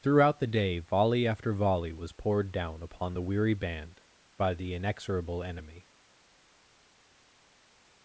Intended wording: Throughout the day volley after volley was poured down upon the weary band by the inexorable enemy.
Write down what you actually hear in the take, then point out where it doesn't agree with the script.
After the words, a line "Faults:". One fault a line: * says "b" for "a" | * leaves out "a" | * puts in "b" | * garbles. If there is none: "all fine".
Throughout the day volley after volley was poured down upon the weary band by the inexorable enemy.
Faults:
all fine